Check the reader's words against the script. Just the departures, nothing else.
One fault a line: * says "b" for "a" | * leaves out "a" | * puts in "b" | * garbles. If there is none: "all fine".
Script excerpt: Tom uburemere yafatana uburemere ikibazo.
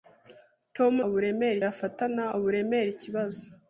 all fine